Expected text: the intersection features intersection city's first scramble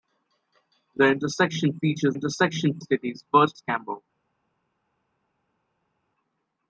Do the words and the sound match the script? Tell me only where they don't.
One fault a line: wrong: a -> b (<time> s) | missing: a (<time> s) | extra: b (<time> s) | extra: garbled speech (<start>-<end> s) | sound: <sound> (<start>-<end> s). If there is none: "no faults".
no faults